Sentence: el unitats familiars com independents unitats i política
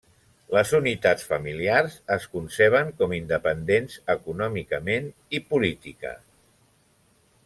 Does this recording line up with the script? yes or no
no